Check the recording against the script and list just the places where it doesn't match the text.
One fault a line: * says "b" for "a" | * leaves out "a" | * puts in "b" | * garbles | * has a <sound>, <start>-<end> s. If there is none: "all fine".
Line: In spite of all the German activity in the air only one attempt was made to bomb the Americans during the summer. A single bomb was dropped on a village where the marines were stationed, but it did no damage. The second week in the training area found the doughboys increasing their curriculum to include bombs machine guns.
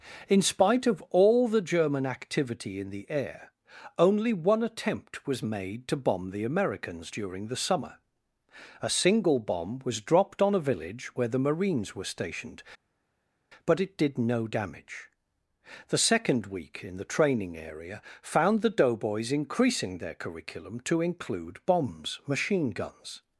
all fine